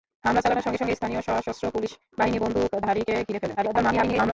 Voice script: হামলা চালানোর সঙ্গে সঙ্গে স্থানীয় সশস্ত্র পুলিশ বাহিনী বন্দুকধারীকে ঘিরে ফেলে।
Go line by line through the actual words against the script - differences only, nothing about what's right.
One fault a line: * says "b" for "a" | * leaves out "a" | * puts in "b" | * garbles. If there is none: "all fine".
* garbles